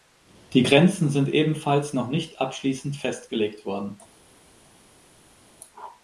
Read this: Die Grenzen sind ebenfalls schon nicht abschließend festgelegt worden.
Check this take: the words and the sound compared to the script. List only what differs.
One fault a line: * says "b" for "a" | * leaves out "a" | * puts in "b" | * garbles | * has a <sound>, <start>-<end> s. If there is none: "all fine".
* says "noch" for "schon"